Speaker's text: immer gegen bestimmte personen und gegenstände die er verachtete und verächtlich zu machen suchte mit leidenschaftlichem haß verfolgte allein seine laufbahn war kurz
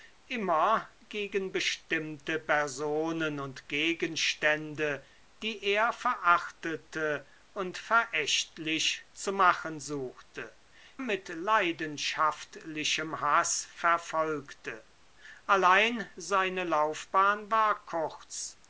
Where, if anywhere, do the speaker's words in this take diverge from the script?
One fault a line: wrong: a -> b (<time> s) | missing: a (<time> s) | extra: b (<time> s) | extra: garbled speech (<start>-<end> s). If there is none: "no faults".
no faults